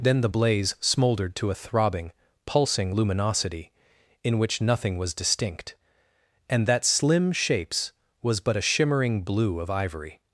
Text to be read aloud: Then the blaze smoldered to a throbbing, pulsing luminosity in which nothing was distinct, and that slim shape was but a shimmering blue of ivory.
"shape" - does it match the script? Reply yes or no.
no